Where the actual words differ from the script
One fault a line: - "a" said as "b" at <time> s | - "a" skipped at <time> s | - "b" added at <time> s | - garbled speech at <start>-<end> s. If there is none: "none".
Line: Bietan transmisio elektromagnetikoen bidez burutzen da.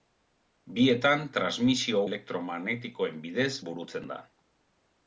none